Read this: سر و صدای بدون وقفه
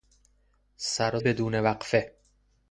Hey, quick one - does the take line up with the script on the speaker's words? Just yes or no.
no